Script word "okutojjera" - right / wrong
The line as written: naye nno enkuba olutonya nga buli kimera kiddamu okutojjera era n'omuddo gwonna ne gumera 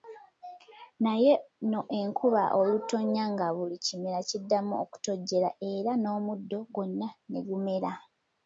right